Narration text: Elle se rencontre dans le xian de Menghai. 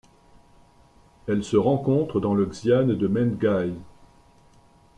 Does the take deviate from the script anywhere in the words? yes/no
no